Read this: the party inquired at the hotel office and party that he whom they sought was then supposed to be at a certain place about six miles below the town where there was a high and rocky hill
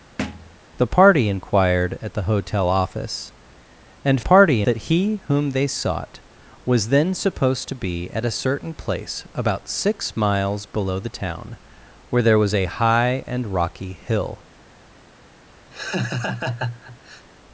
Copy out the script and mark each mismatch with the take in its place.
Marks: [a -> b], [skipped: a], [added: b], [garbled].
the party inquired at the hotel office and party that he whom they sought was then supposed to be at a certain place about six miles below the town where there was a high and rocky hill